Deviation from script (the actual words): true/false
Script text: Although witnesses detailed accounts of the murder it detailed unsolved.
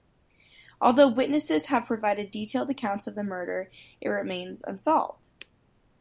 true